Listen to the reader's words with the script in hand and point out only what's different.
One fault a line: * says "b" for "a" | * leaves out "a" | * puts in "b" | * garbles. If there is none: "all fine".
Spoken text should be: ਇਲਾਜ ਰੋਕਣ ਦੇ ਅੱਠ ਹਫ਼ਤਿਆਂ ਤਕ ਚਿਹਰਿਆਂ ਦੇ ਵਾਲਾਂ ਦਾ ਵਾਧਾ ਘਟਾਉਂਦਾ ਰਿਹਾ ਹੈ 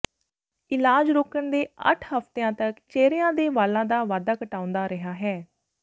all fine